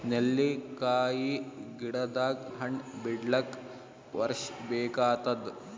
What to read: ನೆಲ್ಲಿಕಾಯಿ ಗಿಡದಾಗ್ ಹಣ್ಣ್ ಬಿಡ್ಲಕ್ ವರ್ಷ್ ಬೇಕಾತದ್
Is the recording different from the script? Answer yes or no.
no